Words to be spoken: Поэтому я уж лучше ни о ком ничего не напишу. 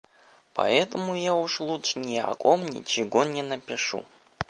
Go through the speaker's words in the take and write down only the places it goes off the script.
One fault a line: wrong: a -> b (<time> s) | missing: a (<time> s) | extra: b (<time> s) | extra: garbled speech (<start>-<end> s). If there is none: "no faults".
no faults